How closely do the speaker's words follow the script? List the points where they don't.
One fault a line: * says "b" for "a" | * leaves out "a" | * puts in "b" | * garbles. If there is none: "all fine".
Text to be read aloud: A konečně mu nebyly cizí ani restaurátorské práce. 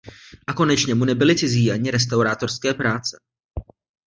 all fine